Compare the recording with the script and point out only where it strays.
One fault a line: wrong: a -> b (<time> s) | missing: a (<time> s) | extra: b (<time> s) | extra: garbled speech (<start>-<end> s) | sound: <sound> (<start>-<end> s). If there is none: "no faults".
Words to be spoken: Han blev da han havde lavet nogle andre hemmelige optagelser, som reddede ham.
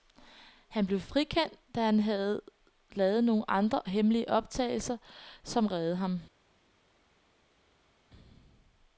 extra: frikendt (1.0 s)